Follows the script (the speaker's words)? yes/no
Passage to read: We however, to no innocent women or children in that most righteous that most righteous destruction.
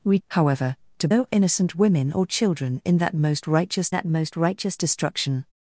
yes